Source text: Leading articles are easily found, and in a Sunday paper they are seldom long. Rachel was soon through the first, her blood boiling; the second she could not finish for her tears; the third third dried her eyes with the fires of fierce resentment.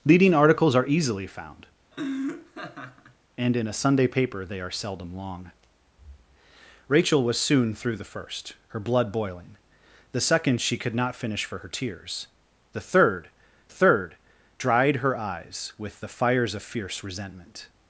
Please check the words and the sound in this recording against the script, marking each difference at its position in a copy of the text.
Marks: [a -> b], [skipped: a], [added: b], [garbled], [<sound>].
Leading articles are easily found, [laugh] and in a Sunday paper they are seldom long. Rachel was soon through the first, her blood boiling; the second she could not finish for her tears; the third third dried her eyes with the fires of fierce resentment.